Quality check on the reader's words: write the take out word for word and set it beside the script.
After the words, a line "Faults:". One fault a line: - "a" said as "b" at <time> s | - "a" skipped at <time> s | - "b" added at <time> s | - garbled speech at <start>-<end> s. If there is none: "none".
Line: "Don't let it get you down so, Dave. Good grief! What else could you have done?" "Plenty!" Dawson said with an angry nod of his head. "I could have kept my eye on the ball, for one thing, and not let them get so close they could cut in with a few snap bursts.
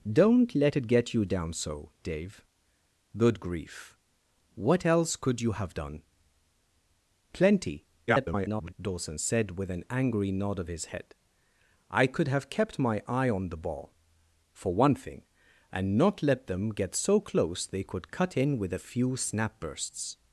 "Don't let it get you down so, Dave. Good grief! What else could you have done?" "Plenty!" [garbled] Dawson said with an angry nod of his head. "I could have kept my eye on the ball, for one thing, and not let them get so close they could cut in with a few snap bursts.
Faults:
- garbled speech at 8.1-8.7 s